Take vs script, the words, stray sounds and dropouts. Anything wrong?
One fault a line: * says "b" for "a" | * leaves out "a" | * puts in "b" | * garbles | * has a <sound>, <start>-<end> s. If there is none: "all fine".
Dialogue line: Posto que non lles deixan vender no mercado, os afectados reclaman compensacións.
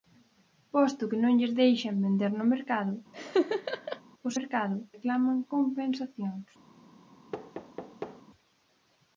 * has a laugh, 3.1-4.0 s
* says "mercado" for "afectados"
* has a thud, 7.3-8.2 s